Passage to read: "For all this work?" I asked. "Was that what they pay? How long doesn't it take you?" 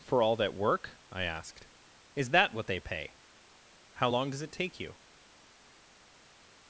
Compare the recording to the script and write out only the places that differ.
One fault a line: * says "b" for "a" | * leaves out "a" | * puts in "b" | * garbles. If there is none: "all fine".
* says "that" for "this"
* says "Is" for "Was"
* says "does" for "doesn't"